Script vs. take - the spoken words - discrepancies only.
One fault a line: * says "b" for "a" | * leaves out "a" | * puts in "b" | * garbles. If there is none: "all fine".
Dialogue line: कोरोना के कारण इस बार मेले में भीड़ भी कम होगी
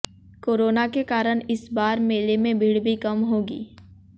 all fine